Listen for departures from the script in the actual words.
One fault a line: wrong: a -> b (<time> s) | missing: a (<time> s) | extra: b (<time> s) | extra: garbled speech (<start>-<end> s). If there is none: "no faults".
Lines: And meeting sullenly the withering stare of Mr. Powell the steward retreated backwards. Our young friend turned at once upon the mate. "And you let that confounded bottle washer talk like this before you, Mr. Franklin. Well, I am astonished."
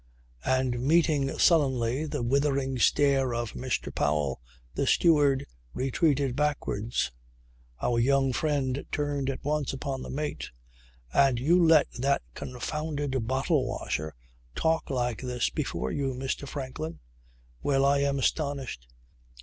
no faults